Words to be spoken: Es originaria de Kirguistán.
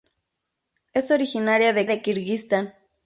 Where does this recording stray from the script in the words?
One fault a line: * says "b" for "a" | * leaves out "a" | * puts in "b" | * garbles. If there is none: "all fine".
* puts in "de"